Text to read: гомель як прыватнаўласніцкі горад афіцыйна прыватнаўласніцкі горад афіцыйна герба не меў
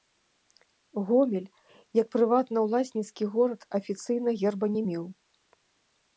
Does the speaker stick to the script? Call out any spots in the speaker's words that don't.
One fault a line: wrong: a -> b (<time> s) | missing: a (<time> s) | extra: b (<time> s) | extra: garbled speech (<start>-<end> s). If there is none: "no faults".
missing: прыватнаўласніцкі горад афіцыйна (4.3 s)